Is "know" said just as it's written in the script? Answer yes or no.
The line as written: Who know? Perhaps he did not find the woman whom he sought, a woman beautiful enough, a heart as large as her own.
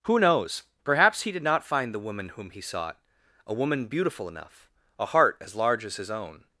no